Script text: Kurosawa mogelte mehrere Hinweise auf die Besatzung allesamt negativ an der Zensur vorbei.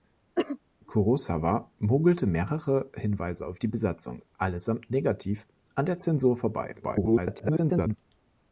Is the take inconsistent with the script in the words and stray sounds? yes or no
yes